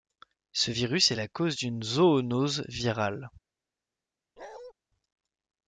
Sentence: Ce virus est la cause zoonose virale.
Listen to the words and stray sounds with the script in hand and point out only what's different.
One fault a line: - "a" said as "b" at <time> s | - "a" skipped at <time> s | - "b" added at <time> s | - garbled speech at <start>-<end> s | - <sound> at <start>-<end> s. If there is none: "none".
- "d'une" added at 1.5 s
- bark at 4.4-4.7 s